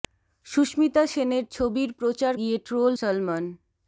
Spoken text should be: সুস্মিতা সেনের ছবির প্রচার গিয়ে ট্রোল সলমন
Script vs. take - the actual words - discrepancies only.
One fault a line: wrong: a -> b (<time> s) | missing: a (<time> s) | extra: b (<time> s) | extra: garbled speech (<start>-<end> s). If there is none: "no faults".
no faults